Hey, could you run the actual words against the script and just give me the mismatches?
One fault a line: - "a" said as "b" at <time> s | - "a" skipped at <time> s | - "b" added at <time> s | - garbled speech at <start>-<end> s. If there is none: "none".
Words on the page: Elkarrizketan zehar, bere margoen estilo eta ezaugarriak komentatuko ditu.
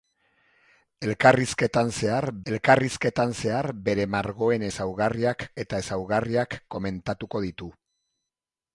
- "elkarrizketan zehar" added at 2.5 s
- "estilo" said as "ezaugarriak" at 4.7 s